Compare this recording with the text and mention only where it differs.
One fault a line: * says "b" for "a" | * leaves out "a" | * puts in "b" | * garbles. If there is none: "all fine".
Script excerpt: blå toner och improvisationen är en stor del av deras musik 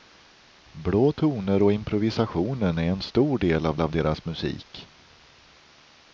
* puts in "av"